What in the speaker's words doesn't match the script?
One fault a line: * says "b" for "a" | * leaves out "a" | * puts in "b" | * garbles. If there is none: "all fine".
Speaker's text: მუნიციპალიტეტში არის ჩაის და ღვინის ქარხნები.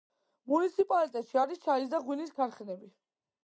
all fine